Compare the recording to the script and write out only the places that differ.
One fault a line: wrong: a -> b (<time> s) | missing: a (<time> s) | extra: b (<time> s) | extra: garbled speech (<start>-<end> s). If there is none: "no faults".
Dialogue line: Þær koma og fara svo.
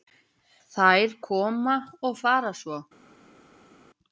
no faults